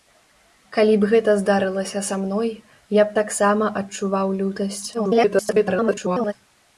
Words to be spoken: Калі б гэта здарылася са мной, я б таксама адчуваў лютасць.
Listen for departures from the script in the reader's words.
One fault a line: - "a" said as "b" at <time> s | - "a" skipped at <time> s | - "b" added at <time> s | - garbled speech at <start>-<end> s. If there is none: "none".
- garbled speech at 4.9-6.3 s